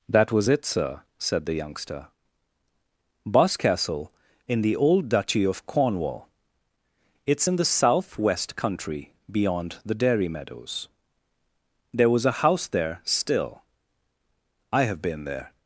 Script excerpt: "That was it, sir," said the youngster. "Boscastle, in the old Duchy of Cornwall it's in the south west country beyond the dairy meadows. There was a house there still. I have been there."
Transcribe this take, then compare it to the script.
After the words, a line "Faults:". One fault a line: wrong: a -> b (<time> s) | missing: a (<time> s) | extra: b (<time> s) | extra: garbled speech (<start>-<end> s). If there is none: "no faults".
"That was it, sir," said the youngster. "Boscastle, in the old Duchy of Cornwall it's in the south west country beyond the dairy meadows. There was a house there still. I have been there."
Faults:
no faults